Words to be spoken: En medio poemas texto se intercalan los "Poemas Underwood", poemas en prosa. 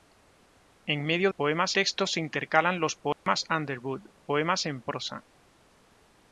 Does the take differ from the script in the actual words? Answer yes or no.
no